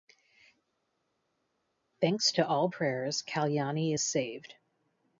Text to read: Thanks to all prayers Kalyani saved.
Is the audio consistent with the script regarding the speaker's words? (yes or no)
no